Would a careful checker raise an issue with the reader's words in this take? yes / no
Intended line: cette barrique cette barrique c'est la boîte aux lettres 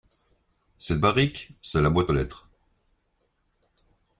yes